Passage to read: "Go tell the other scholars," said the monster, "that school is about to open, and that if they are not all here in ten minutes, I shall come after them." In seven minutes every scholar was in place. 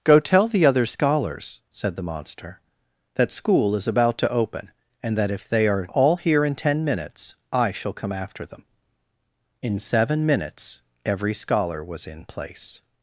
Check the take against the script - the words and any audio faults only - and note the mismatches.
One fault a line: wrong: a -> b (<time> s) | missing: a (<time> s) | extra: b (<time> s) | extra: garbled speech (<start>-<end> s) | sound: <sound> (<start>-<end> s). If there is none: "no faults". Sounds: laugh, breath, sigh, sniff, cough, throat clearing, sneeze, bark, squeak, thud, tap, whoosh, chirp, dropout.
missing: not (5.9 s)